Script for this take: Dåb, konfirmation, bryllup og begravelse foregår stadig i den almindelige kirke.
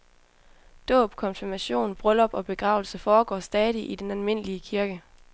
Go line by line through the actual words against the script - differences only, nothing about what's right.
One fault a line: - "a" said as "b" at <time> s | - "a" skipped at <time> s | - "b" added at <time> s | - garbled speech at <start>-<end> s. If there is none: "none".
none